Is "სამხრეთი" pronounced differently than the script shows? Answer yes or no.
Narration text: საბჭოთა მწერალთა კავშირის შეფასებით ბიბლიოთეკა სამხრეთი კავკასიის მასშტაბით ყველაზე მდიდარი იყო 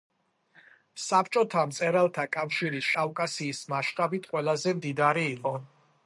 yes